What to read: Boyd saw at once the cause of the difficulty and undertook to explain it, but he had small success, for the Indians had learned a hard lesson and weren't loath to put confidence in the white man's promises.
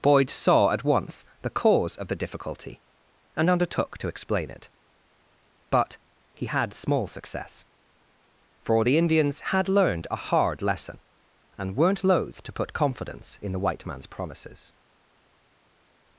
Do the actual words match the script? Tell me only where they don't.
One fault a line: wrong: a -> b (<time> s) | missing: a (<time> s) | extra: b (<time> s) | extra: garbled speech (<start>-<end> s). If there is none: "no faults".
no faults